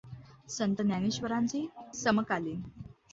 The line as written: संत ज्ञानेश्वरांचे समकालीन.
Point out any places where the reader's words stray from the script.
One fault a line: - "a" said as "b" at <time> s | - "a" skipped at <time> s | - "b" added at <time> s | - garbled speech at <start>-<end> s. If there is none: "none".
none